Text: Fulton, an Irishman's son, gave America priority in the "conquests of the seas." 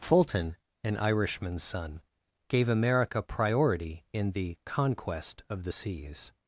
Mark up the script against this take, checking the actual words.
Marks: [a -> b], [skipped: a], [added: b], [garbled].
Fulton, an Irishman's son, gave America priority in the ["conquests -> conquest] of the seas."